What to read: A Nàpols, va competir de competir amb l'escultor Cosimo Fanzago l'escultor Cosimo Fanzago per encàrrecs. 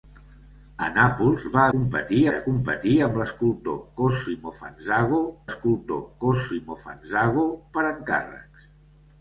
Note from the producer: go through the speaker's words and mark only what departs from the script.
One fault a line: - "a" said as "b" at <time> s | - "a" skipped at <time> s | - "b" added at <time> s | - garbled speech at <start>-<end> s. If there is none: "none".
none